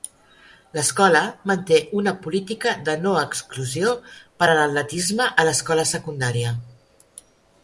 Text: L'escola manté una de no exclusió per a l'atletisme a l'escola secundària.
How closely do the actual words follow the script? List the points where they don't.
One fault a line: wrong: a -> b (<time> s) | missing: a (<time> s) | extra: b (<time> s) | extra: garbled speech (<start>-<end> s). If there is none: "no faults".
extra: política (2.2 s)